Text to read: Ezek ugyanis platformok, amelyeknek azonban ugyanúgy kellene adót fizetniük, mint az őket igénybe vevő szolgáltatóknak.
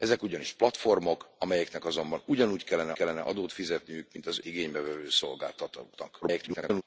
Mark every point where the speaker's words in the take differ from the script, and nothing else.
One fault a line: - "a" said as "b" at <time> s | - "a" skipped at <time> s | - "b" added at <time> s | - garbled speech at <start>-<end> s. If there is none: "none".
- "kellene" added at 2.9 s
- "őket" skipped at 4.4 s
- garbled speech at 6.2-6.8 s